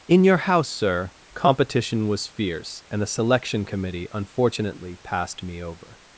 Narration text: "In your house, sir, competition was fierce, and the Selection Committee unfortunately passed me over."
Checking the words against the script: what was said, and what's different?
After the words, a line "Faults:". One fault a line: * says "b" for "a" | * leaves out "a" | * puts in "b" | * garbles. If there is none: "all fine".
"In your house, sir, competition was fierce, and the Selection Committee unfortunately passed me over."
Faults:
all fine